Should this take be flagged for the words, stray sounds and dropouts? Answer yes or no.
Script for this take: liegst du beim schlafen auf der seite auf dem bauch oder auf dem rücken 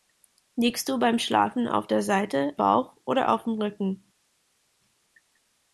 yes